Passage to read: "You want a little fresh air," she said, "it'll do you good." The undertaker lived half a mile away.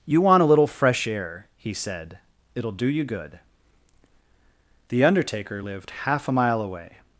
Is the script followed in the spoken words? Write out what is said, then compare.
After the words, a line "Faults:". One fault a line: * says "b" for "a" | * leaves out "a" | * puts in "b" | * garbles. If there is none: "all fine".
"You want a little fresh air," he said, "it'll do you good." The undertaker lived half a mile away.
Faults:
* says "he" for "she"